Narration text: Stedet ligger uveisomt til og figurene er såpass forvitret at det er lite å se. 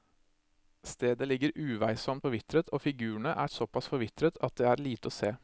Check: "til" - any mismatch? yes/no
yes